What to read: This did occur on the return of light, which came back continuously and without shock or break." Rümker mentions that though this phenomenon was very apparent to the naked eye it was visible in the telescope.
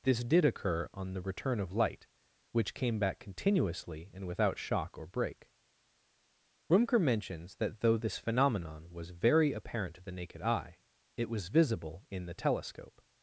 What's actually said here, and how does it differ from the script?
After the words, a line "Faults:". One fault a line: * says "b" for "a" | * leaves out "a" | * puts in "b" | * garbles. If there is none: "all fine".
This did occur on the return of light, which came back continuously and without shock or break." Rümker mentions that though this phenomenon was very apparent to the naked eye it was visible in the telescope.
Faults:
all fine